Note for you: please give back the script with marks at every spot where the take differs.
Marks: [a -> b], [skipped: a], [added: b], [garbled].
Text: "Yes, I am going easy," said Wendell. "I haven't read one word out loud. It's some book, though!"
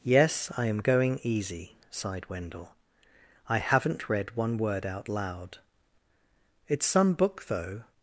"Yes, I am going easy," [said -> sighed] Wendell. "I haven't read one word out loud. It's some book, though!"